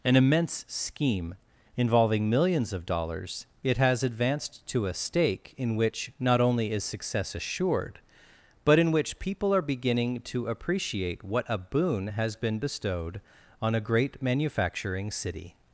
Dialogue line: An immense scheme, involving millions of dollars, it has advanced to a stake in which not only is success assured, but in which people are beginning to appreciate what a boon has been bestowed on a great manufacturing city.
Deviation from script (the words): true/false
false